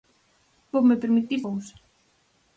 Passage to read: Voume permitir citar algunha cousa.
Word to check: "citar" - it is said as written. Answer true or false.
false